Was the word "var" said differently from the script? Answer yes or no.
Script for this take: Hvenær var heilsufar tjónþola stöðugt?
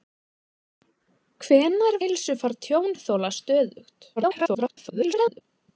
yes